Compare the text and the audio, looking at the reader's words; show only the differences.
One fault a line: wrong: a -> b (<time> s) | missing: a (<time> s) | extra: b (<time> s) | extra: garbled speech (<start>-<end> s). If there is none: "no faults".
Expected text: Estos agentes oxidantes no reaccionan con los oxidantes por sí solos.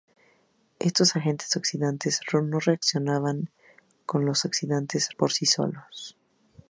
no faults